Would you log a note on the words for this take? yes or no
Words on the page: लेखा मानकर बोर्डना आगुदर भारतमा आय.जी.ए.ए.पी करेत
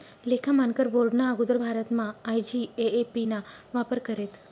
yes